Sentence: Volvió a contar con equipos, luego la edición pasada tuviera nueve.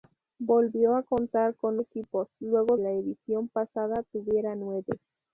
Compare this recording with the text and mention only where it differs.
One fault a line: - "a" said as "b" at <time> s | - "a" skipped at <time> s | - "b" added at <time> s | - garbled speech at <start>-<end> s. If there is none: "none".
none